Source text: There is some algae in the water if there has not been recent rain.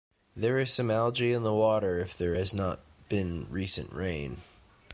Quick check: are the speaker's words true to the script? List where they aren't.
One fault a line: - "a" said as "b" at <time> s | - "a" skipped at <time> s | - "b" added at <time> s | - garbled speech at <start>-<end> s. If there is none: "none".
none